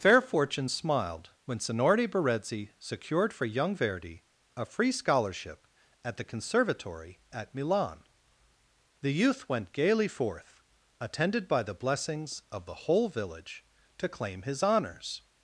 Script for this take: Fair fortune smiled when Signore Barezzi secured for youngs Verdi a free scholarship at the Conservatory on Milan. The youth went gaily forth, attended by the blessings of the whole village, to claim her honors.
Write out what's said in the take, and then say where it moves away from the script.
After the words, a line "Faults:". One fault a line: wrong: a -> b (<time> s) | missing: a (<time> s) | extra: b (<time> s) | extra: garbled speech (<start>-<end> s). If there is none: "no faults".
Fair fortune smiled when Signore Barezzi secured for young Verdi a free scholarship at the Conservatory at Milan. The youth went gaily forth, attended by the blessings of the whole village, to claim his honors.
Faults:
wrong: youngs -> young (3.4 s)
wrong: on -> at (7.3 s)
wrong: her -> his (14.4 s)